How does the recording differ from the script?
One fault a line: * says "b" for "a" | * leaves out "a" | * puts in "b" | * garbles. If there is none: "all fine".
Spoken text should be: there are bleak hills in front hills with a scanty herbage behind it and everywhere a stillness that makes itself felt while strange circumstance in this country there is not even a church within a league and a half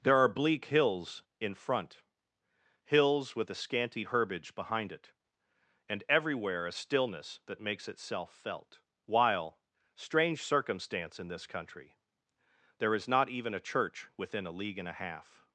all fine